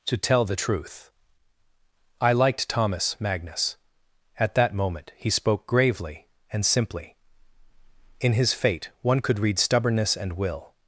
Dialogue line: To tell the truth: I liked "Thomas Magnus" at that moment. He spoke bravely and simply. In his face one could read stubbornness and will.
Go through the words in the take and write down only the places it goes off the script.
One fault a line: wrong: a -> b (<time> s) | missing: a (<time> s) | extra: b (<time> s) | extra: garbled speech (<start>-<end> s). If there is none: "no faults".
wrong: bravely -> gravely (5.7 s)
wrong: face -> fate (8.5 s)